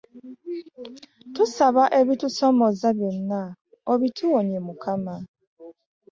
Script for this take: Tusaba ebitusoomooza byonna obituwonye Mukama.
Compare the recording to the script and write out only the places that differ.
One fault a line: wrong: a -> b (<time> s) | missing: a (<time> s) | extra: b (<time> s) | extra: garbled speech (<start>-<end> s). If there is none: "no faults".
no faults